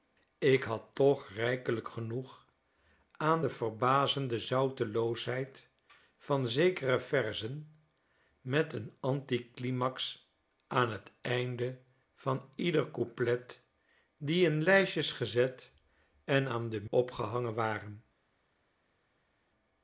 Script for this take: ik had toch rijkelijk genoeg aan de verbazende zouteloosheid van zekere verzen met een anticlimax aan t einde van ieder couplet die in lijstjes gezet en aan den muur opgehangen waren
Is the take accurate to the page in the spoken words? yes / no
no